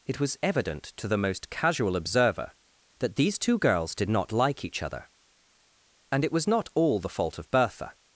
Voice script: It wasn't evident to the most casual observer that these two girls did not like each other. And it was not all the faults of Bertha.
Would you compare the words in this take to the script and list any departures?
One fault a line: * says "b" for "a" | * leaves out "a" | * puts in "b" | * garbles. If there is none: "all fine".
* says "was" for "wasn't"
* says "fault" for "faults"